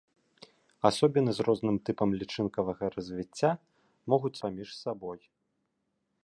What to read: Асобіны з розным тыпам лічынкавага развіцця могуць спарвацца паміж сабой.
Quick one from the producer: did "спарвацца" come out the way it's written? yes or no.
no